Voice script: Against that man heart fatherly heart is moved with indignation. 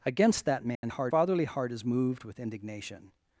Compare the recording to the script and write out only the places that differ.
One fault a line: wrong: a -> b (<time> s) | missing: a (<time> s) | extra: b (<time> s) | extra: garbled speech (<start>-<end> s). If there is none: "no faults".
no faults